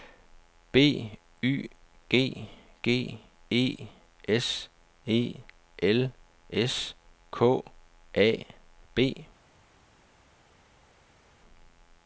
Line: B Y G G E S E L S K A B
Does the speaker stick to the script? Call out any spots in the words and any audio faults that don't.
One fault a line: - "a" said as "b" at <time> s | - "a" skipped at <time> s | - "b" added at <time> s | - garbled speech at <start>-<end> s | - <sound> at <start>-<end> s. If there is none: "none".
none